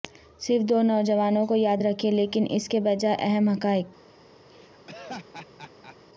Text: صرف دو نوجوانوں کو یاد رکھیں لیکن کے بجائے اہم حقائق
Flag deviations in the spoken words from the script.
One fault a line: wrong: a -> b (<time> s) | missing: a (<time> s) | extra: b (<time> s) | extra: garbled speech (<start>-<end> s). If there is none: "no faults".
extra: اس (2.5 s)